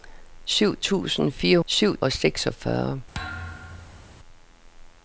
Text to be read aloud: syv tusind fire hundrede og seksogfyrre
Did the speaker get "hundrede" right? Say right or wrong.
wrong